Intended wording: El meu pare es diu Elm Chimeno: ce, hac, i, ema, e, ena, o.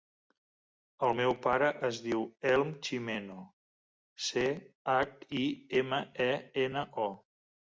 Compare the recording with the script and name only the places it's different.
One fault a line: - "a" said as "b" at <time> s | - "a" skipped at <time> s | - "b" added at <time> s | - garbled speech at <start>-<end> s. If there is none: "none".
none